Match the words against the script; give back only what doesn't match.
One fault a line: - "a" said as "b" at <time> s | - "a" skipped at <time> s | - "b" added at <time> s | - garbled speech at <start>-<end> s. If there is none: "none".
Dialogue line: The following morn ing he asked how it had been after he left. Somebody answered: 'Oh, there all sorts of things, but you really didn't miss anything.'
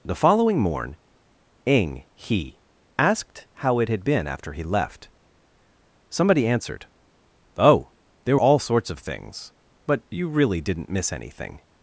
none